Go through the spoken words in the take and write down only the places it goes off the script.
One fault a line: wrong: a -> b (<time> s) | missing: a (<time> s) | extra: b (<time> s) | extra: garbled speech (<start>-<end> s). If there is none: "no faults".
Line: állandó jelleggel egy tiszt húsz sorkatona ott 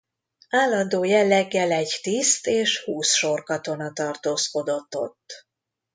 extra: és (2.5 s)
extra: tartózkodott (3.9 s)